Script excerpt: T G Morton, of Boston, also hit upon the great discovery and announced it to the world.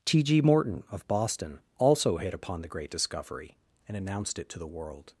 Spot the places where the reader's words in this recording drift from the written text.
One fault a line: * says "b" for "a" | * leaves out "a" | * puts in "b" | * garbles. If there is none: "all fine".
all fine